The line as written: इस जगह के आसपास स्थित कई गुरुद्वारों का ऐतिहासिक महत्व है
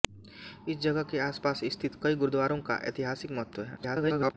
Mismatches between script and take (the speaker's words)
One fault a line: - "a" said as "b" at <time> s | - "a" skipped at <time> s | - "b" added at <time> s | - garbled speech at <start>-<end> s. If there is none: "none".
- garbled speech at 3.8-4.3 s